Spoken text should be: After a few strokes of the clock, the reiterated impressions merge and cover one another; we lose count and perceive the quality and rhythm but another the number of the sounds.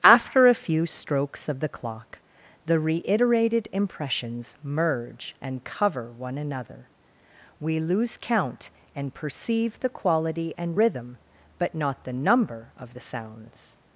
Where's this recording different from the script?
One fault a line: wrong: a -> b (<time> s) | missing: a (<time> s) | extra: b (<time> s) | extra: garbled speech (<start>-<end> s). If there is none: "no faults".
wrong: another -> not (11.7 s)